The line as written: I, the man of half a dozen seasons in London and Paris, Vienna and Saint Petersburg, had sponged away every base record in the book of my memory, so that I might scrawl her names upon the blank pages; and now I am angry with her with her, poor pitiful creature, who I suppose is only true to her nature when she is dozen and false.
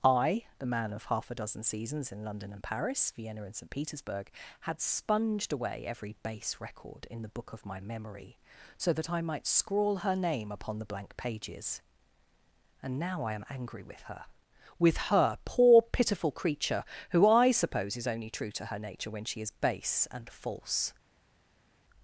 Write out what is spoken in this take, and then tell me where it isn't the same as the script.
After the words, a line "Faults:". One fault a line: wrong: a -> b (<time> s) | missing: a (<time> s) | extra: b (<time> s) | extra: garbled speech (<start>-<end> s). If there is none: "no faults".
I, the man of half a dozen seasons in London and Paris, Vienna and Saint Petersburg, had sponged away every base record in the book of my memory, so that I might scrawl her name upon the blank pages; and now I am angry with her with her, poor pitiful creature, who I suppose is only true to her nature when she is base and false.
Faults:
wrong: names -> name (10.1 s)
wrong: dozen -> base (19.5 s)